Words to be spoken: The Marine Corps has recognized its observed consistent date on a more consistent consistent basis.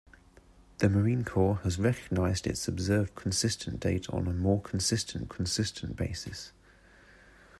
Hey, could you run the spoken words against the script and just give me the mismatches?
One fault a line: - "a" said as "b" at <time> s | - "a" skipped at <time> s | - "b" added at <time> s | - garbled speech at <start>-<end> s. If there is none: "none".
none